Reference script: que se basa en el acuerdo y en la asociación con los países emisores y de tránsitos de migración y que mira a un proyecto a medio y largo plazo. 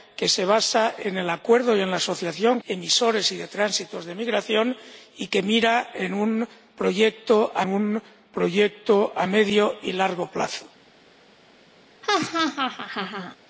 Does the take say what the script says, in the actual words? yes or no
no